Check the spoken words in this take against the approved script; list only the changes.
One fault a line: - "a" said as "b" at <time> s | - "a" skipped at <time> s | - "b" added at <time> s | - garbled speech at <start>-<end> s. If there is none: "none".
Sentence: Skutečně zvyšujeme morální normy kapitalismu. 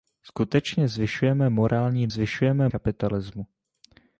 - "normy" said as "zvyšujeme" at 2.1 s